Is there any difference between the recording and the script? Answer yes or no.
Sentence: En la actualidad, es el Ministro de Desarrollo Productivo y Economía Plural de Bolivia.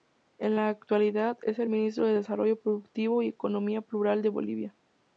no